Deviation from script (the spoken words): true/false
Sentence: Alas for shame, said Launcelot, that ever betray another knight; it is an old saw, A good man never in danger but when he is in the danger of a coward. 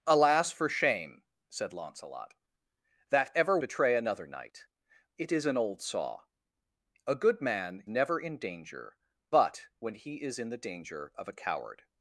false